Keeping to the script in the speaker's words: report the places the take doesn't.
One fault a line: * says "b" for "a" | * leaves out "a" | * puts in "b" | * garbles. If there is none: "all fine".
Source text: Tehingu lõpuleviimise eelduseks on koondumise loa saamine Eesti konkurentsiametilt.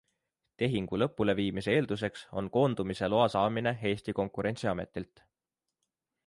all fine